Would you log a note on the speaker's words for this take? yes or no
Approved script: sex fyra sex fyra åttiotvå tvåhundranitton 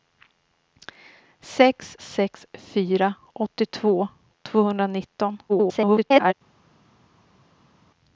yes